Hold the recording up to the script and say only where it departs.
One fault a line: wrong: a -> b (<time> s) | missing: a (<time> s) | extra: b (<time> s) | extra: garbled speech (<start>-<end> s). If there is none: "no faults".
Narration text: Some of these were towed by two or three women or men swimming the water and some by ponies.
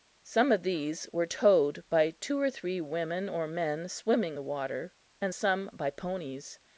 no faults